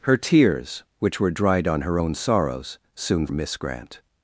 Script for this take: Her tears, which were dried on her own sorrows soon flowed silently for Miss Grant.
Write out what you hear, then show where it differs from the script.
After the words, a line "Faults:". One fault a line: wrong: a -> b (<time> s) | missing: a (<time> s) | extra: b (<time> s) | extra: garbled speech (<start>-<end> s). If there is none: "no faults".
Her tears, which were dried on her own sorrows soon Miss Grant.
Faults:
missing: flowed silently for (3.3 s)